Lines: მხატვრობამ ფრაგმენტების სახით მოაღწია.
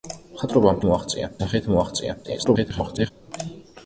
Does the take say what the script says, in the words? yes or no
no